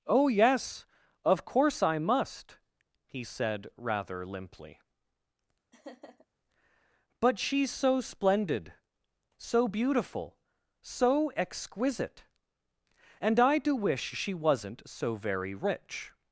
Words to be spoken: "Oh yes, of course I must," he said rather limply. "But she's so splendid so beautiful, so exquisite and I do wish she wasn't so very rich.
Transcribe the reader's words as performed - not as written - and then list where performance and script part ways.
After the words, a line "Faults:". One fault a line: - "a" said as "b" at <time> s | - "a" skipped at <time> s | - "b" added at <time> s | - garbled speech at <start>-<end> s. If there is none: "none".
"Oh yes, of course I must," he said rather limply. "But she's so splendid so beautiful, so exquisite and I do wish she wasn't so very rich.
Faults:
none